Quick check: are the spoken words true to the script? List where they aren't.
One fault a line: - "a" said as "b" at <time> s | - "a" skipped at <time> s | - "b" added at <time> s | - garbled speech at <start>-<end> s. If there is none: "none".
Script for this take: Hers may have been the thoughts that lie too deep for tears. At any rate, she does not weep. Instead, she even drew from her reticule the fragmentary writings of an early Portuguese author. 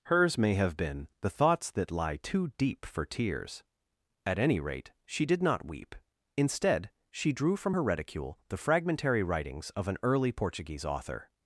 - "does" said as "did" at 5.2 s
- "even" skipped at 7.3 s